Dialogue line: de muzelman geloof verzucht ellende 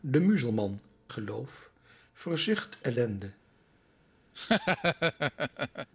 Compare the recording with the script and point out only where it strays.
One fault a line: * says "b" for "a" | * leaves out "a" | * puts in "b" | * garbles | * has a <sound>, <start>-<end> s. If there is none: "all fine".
* has a laugh, 4.3-5.9 s